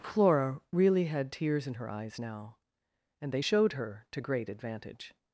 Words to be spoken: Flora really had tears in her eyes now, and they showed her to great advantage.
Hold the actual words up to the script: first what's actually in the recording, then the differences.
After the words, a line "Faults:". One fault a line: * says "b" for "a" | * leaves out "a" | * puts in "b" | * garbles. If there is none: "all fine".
Flora really had tears in her eyes now, and they showed her to great advantage.
Faults:
all fine